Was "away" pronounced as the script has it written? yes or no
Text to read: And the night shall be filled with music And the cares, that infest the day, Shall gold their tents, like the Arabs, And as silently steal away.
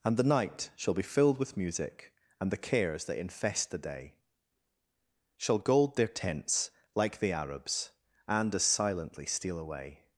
yes